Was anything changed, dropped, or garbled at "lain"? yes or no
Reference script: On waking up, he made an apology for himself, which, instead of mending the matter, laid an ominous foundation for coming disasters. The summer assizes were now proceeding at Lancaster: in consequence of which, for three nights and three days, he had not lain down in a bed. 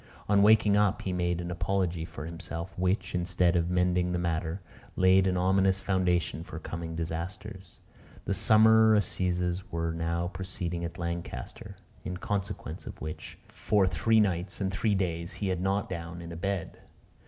yes